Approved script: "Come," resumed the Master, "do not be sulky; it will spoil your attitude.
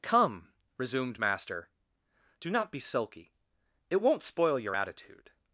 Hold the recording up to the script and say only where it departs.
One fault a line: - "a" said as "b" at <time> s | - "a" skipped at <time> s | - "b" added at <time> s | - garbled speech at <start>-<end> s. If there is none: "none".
- "the" skipped at 1.2 s
- "will" said as "won't" at 4.0 s